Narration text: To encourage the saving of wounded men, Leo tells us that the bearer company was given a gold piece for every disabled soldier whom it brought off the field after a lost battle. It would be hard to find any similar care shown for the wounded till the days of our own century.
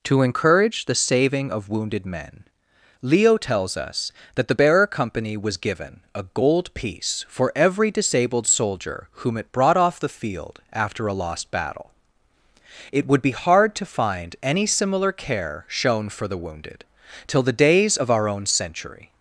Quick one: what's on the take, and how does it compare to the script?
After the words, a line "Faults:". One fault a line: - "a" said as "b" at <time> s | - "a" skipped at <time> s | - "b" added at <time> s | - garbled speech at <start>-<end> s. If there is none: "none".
To encourage the saving of wounded men, Leo tells us that the bearer company was given a gold piece for every disabled soldier whom it brought off the field after a lost battle. It would be hard to find any similar care shown for the wounded till the days of our own century.
Faults:
none